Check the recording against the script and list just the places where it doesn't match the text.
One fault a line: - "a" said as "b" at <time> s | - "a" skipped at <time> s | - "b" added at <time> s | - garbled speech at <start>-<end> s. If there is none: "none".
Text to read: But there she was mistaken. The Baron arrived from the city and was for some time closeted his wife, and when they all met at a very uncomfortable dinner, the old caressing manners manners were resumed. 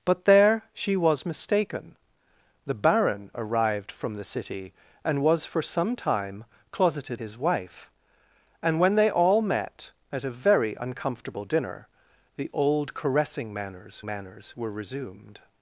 none